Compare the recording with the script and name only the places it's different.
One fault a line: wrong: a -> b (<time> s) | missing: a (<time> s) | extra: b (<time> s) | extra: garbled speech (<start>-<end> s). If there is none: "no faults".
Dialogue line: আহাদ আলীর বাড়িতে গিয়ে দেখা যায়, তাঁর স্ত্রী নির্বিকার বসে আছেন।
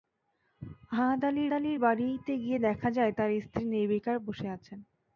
extra: আলীর (1.5 s)